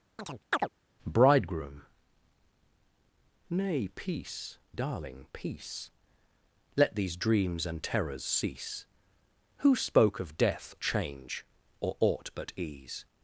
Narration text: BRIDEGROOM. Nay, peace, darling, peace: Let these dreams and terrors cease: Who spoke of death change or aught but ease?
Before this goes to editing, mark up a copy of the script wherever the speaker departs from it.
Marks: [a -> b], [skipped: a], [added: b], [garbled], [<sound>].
[chirp] BRIDEGROOM. Nay, peace, darling, peace: Let these dreams and terrors cease: Who spoke of death change or aught but ease?